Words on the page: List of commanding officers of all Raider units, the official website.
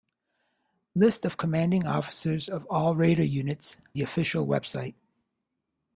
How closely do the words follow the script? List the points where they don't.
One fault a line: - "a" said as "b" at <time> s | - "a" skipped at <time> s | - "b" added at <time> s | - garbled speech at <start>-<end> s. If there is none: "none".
none